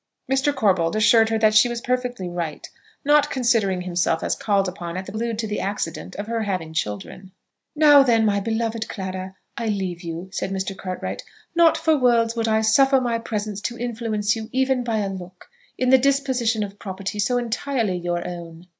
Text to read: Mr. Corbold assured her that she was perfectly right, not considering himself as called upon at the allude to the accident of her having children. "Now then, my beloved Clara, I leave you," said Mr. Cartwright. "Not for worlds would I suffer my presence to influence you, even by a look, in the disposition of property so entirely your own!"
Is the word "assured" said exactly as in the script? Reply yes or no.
yes